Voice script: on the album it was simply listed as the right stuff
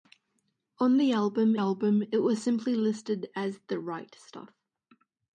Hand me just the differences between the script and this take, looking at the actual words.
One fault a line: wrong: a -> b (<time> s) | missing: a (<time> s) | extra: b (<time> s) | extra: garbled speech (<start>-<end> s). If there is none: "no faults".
extra: album (1.5 s)